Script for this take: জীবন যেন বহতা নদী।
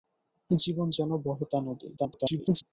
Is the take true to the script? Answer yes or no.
no